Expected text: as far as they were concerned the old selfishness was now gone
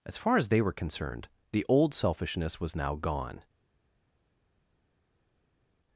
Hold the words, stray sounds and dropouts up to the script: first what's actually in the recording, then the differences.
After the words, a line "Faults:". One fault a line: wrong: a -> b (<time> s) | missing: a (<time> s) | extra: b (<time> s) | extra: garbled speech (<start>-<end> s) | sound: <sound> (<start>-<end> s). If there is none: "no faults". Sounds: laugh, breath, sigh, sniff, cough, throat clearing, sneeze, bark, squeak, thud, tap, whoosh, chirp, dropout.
as far as they were concerned the old selfishness was now gone
Faults:
no faults